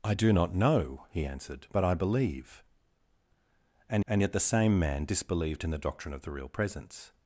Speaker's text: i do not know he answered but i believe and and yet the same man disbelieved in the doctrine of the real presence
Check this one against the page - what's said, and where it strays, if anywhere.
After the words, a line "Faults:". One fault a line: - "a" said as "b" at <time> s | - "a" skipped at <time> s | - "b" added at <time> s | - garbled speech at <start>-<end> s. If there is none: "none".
i do not know he answered but i believe and and yet the same man disbelieved in the doctrine of the real presence
Faults:
none